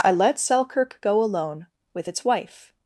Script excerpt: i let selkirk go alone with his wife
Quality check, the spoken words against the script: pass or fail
fail